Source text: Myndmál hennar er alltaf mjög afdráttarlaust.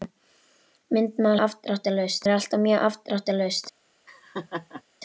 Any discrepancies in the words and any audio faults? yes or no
yes